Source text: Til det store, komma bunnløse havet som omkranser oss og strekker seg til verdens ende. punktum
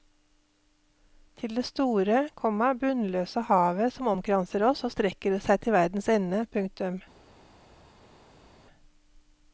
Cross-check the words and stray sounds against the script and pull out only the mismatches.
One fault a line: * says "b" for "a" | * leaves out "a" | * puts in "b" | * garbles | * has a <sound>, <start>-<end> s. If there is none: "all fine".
all fine